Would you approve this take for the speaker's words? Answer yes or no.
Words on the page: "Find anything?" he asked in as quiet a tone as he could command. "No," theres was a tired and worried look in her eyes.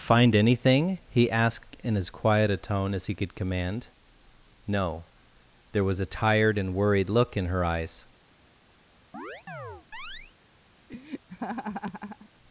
no